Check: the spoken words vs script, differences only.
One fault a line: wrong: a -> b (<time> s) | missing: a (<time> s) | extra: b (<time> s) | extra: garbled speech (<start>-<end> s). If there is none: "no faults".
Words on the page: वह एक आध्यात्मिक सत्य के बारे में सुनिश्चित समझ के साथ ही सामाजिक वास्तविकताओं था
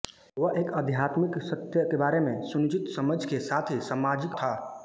missing: वास्तविकताओं (4.4 s)